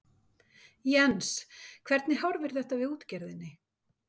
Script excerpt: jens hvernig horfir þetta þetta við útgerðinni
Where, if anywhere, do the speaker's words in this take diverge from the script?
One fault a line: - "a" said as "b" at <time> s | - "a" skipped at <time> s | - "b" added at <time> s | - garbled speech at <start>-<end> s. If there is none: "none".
- "þetta" skipped at 2.8 s